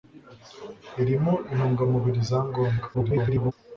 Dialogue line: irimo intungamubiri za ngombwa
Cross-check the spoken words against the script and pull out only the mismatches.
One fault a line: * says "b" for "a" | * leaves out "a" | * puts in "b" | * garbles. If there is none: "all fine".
* garbles